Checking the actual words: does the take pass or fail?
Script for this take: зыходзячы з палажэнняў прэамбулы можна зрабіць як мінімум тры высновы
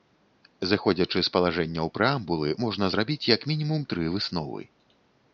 pass